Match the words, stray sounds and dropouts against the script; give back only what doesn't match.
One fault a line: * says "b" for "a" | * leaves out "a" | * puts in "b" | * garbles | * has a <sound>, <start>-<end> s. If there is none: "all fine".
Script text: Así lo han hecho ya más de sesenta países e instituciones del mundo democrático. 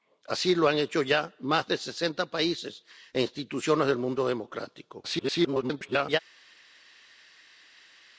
* garbles